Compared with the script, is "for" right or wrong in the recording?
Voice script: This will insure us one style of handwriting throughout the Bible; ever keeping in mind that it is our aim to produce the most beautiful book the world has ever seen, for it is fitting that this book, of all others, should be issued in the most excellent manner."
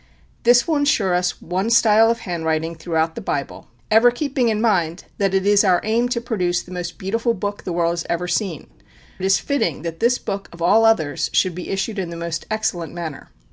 wrong